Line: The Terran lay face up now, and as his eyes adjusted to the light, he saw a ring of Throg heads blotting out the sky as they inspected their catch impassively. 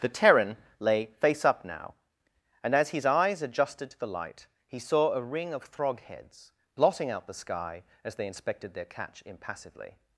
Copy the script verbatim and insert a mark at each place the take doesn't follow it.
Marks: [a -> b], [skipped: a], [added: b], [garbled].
The Terran lay face up now, and as his eyes adjusted to the light, he saw a ring of Throg heads blotting out the sky as they inspected their catch impassively.